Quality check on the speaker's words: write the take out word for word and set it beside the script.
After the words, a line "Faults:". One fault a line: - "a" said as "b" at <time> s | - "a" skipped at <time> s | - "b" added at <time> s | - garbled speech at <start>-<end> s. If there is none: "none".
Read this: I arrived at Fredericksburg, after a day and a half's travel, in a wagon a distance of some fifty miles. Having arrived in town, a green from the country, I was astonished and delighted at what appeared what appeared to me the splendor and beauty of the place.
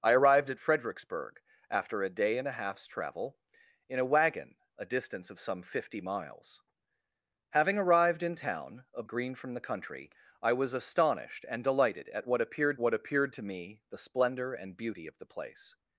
I arrived at Fredericksburg, after a day and a half's travel, in a wagon a distance of some fifty miles. Having arrived in town, a green from the country, I was astonished and delighted at what appeared what appeared to me the splendor and beauty of the place.
Faults:
none